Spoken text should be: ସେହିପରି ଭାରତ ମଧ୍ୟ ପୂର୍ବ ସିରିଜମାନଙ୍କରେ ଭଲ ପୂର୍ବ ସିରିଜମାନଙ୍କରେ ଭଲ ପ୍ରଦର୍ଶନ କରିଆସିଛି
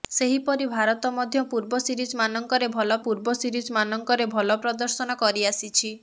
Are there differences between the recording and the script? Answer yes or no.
no